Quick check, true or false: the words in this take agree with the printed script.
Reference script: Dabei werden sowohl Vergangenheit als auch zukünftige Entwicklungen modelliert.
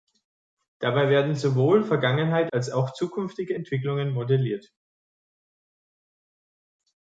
true